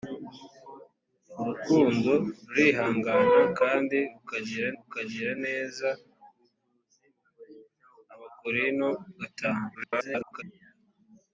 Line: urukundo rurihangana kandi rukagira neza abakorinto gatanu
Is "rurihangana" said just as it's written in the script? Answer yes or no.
yes